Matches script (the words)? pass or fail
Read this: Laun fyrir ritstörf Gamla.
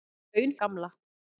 fail